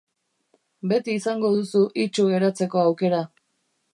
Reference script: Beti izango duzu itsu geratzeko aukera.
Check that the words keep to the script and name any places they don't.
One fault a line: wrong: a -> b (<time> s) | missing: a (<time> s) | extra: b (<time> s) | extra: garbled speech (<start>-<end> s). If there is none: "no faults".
no faults